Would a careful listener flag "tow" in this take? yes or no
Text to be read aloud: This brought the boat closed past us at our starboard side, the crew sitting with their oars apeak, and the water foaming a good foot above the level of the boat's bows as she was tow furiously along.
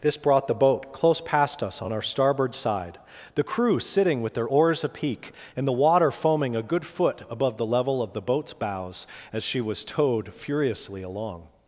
yes